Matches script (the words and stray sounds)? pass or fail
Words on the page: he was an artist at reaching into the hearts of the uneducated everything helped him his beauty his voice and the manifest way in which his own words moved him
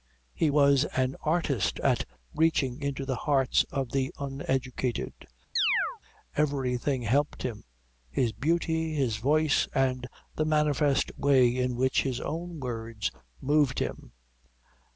fail